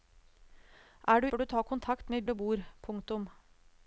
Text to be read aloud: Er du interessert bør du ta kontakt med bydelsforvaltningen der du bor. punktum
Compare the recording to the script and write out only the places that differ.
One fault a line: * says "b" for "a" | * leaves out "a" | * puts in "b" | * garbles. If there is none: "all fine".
* leaves out "interessert"
* leaves out "bydelsforvaltningen der"